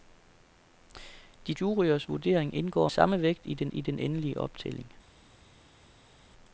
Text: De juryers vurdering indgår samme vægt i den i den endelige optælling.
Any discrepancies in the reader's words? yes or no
no